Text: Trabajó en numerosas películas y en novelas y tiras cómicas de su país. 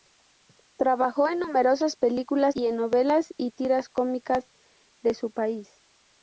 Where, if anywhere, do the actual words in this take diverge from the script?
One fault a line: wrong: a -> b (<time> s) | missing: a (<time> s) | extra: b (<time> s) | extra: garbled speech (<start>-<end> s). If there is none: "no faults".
no faults